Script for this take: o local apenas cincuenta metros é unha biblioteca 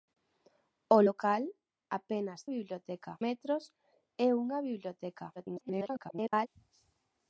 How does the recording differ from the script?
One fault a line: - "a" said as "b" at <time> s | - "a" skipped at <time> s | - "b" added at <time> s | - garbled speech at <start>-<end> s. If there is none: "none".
- "cincuenta" said as "biblioteca" at 2.5 s
- garbled speech at 5.4-6.5 s